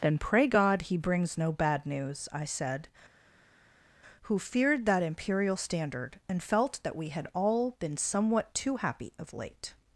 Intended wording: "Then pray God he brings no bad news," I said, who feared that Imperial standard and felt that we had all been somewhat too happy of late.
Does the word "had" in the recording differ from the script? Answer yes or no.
no